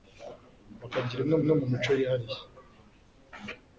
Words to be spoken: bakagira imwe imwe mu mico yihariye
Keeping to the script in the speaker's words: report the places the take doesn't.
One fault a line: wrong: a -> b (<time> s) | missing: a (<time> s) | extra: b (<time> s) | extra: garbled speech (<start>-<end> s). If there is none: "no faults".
no faults